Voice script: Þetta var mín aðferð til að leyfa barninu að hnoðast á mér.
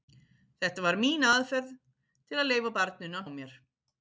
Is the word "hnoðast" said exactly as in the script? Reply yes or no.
no